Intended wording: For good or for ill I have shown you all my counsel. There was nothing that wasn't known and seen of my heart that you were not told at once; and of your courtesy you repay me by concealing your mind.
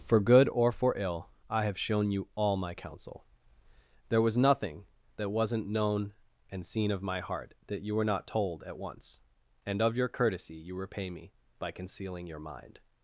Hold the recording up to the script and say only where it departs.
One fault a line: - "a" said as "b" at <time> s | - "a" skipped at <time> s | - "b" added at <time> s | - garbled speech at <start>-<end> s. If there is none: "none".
none